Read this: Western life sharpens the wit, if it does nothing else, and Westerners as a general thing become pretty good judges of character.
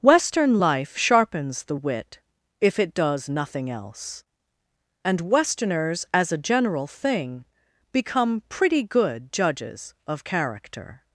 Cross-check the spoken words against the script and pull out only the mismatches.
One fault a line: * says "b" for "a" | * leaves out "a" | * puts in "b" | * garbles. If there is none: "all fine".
all fine